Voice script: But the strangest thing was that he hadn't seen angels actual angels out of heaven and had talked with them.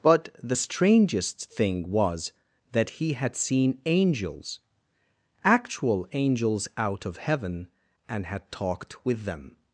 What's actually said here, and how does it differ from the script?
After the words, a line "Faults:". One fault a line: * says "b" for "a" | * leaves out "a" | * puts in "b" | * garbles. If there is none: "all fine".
But the strangest thing was that he had seen angels actual angels out of heaven and had talked with them.
Faults:
* says "had" for "hadn't"